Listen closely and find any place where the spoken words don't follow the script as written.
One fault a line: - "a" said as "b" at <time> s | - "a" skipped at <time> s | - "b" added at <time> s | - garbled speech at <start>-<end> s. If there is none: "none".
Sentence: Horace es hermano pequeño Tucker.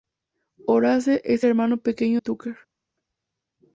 none